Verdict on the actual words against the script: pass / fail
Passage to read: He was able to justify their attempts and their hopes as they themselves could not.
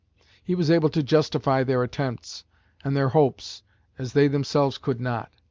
pass